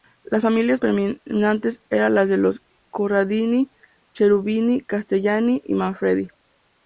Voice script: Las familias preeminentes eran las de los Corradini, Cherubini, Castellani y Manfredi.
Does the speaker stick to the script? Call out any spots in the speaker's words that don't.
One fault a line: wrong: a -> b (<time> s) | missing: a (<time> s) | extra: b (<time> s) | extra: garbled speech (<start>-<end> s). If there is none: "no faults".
no faults